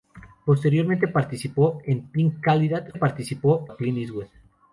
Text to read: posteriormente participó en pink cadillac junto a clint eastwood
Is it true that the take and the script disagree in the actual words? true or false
true